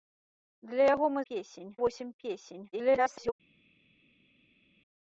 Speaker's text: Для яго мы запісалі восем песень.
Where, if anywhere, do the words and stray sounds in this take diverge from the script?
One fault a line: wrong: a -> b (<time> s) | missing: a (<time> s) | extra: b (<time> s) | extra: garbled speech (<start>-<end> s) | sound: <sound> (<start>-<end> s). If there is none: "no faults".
wrong: запісалі -> песень (1.3 s)
extra: garbled speech (2.7-3.3 s)